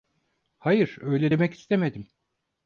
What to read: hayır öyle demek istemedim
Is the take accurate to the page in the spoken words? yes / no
yes